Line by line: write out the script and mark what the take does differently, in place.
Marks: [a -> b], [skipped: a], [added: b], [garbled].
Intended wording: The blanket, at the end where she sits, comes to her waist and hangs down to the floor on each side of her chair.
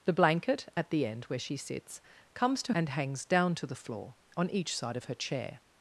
The blanket, at the end where she sits, comes to [skipped: her waist] and hangs down to the floor on each side of her chair.